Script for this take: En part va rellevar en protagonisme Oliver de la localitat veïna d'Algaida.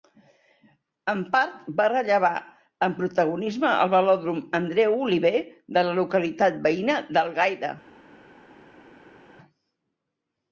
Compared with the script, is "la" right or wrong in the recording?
right